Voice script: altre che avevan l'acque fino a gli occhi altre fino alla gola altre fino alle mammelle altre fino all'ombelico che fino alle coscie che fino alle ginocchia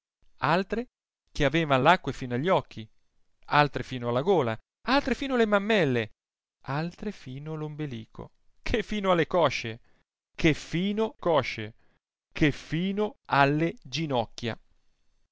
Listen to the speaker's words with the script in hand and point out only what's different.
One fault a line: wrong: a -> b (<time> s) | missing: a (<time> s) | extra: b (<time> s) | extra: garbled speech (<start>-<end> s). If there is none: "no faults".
extra: coscie che fino (11.2 s)